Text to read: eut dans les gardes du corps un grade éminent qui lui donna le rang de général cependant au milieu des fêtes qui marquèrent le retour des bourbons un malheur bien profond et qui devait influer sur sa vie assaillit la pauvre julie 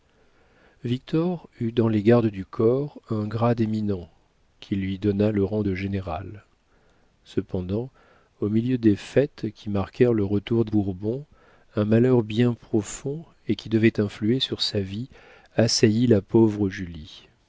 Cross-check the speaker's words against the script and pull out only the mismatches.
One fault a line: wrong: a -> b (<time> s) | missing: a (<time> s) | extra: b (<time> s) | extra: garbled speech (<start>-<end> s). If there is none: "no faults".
no faults